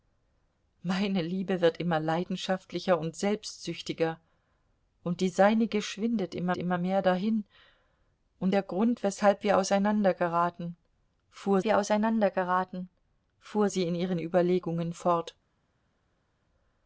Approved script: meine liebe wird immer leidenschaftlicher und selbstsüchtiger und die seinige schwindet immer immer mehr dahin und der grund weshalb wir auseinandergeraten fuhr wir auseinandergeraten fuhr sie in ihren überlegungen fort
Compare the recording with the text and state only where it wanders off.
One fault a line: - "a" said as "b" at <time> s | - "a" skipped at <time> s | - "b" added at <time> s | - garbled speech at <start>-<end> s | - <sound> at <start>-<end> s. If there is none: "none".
none